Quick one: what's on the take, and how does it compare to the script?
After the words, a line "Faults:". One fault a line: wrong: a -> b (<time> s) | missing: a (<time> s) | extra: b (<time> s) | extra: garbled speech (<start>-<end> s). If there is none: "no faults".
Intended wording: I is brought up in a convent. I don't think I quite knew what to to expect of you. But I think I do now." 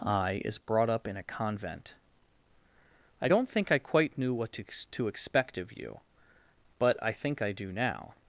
I is brought up in a convent. I don't think I quite knew what to to expect of you. But I think I do now."
Faults:
no faults